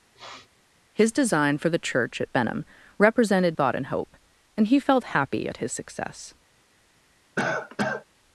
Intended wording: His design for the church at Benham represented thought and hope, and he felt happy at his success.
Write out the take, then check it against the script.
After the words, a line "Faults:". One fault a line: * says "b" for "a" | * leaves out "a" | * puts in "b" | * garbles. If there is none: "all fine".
His design for the church at Benham represented thought and hope, and he felt happy at his success.
Faults:
all fine